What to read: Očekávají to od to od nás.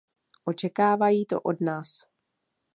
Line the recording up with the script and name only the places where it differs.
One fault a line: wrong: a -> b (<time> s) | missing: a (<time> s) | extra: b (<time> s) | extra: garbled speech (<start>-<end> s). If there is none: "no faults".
missing: to od (1.6 s)